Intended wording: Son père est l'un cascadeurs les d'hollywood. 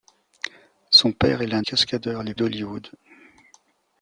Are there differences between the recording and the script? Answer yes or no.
no